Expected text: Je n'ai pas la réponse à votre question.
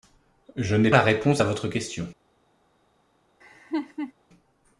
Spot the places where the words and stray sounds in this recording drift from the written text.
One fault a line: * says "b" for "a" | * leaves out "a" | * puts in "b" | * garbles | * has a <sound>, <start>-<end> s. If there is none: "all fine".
* leaves out "pas"
* has a laugh, 3.4-4.1 s